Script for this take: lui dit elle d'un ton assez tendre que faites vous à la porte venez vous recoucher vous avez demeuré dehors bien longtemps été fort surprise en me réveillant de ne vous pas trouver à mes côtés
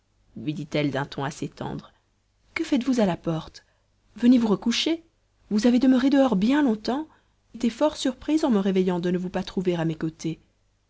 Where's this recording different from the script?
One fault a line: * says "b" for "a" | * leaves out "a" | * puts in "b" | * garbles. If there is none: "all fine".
all fine